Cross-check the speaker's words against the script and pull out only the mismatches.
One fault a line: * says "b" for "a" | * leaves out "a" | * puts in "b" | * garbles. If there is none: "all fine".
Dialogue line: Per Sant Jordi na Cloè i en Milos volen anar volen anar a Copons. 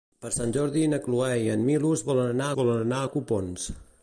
all fine